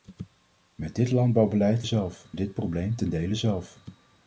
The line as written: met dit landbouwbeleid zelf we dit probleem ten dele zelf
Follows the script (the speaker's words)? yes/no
yes